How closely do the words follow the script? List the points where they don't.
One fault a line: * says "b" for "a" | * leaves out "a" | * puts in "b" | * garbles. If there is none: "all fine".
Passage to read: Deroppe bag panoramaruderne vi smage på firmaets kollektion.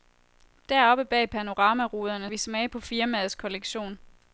all fine